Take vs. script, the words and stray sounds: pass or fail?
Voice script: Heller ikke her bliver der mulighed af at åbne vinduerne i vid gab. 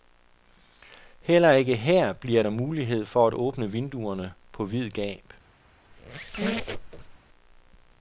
fail